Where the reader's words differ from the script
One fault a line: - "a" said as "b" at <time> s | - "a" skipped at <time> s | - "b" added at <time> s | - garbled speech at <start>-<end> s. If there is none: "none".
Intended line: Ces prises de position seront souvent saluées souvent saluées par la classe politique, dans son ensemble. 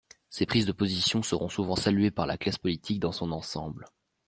- "souvent saluées" skipped at 2.1 s